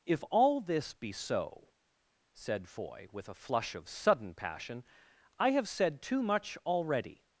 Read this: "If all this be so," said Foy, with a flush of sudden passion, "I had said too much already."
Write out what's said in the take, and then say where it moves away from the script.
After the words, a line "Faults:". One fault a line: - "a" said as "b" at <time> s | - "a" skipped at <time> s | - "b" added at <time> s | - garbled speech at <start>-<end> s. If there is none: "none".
"If all this be so," said Foy, with a flush of sudden passion, "I have said too much already."
Faults:
- "had" said as "have" at 5.5 s